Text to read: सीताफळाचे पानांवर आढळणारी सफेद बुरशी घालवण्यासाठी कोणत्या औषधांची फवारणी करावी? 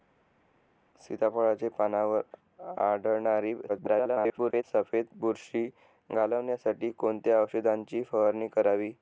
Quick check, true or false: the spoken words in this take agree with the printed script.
false